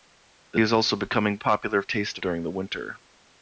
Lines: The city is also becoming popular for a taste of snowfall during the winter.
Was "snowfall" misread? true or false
true